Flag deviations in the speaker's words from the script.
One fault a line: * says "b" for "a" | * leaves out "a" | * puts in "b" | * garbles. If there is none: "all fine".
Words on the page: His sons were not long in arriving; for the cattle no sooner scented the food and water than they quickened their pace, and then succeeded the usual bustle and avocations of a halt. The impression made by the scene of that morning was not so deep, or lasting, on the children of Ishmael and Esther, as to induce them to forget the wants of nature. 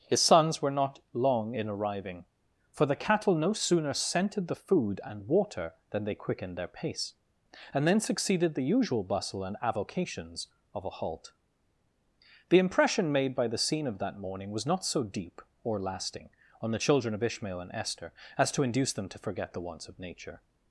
all fine